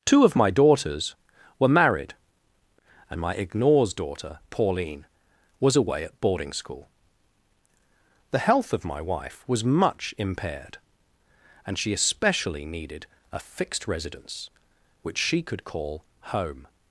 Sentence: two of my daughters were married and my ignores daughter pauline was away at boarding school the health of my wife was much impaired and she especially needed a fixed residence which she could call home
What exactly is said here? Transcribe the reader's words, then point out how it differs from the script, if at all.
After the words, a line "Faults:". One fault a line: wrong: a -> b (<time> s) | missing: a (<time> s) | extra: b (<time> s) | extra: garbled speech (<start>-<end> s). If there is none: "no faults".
two of my daughters were married and my ignores daughter pauline was away at boarding school the health of my wife was much impaired and she especially needed a fixed residence which she could call home
Faults:
no faults